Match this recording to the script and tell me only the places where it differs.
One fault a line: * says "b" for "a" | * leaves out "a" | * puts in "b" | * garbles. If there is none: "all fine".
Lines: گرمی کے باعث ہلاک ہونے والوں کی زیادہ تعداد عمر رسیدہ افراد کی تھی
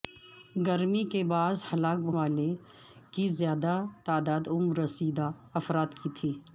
* leaves out "ہونے"